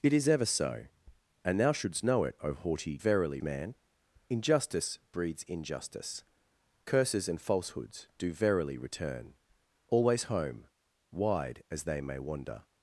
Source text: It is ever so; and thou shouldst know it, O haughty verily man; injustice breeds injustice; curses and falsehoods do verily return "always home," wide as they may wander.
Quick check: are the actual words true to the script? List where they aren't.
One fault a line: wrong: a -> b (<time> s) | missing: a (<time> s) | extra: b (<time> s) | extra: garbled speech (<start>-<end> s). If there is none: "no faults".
no faults